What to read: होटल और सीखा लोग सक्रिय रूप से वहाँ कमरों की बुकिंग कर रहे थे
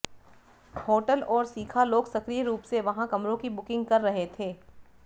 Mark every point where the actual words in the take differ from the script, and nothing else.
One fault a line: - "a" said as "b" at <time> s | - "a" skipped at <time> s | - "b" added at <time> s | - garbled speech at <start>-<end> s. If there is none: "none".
none